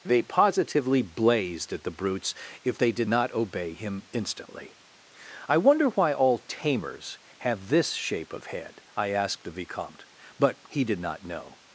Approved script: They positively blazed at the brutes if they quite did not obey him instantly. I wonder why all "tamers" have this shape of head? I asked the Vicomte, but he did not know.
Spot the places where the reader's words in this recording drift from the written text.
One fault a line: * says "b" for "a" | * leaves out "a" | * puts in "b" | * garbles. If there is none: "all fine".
* leaves out "quite"